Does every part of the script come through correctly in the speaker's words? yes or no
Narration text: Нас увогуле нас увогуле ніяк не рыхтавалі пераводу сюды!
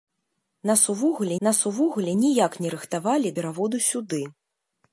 yes